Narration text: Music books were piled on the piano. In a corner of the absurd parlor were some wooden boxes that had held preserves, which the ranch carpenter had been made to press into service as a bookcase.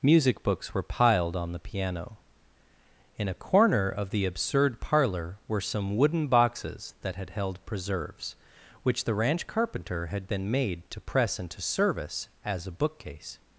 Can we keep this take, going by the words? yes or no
yes